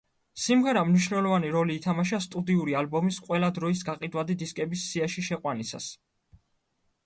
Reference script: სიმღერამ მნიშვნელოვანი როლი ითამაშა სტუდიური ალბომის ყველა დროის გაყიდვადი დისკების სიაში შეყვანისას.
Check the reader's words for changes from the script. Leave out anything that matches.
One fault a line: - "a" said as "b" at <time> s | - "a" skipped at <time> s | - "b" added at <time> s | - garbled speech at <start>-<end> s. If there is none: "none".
none